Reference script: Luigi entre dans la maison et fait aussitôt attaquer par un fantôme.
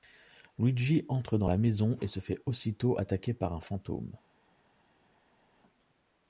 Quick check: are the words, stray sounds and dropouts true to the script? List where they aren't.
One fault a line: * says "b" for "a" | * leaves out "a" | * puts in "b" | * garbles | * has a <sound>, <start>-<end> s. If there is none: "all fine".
* puts in "se"